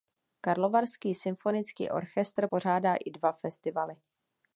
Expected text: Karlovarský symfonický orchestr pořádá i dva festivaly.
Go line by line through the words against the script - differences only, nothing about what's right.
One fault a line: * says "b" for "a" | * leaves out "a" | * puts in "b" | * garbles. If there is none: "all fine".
all fine